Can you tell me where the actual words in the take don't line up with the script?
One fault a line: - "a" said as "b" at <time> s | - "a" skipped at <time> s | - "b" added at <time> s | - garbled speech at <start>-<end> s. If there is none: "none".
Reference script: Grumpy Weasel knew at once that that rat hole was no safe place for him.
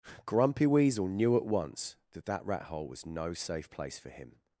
none